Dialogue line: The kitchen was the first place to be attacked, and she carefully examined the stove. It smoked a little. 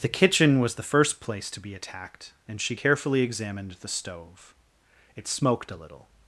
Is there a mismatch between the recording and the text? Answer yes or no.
no